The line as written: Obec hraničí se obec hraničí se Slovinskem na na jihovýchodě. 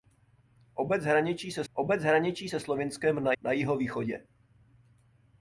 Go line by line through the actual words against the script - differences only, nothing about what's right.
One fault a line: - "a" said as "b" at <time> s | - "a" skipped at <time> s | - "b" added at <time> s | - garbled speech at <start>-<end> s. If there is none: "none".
none